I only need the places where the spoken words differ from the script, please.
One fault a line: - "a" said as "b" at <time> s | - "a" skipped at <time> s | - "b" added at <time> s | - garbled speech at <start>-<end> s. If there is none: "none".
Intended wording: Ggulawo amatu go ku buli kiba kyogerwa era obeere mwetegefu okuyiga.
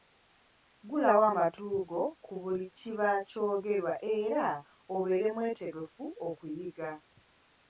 none